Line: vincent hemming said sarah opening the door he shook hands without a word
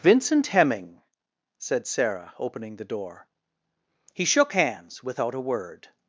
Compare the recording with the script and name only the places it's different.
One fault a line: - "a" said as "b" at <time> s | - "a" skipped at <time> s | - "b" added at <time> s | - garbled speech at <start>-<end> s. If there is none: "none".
none